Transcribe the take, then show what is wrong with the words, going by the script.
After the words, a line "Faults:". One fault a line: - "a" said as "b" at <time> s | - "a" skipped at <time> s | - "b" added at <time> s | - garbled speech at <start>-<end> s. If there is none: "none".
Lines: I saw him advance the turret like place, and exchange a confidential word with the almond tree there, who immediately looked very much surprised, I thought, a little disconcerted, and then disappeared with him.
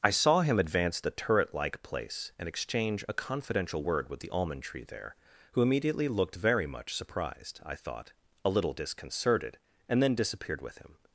I saw him advance the turret like place, and exchange a confidential word with the almond tree there, who immediately looked very much surprised, I thought, a little disconcerted, and then disappeared with him.
Faults:
none